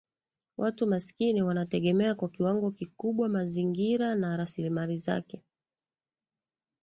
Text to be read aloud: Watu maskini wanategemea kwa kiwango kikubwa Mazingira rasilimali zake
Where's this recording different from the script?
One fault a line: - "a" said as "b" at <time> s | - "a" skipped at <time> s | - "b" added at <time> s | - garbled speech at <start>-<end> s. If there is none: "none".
- "na" added at 4.2 s